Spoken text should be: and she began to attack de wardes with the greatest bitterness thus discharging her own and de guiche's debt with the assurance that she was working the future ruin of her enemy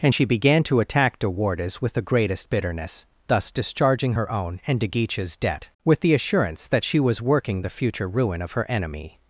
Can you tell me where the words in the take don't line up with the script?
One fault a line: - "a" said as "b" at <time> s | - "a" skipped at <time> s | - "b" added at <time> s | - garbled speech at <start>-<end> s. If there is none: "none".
none